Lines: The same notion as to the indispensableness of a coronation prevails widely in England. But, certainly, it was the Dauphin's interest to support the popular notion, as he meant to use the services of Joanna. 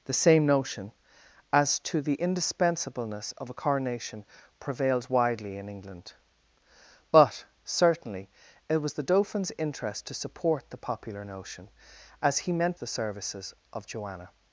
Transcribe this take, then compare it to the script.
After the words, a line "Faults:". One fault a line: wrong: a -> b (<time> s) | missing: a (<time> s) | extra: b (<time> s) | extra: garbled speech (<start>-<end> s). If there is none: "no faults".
The same notion as to the indispensableness of a coronation prevails widely in England. But, certainly, it was the Dauphin's interest to support the popular notion, as he meant the services of Joanna.
Faults:
missing: to use (12.8 s)